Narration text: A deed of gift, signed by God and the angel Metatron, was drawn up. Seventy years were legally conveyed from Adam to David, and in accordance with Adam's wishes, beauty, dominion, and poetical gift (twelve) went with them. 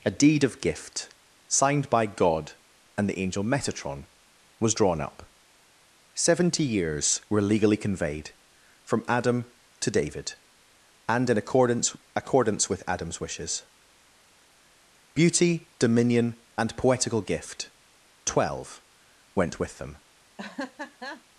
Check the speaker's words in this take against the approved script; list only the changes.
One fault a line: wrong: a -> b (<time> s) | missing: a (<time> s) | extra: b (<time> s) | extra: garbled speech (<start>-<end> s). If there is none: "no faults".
extra: accordance (12.1 s)